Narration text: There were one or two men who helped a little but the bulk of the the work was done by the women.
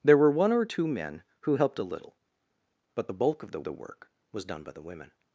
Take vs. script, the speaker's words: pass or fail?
pass